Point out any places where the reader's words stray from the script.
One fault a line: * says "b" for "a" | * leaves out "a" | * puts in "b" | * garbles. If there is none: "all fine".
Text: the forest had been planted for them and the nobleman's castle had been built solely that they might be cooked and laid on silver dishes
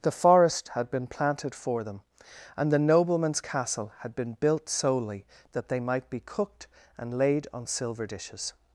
all fine